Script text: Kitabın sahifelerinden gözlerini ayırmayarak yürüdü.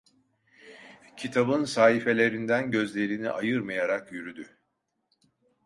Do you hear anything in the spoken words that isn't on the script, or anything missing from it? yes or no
no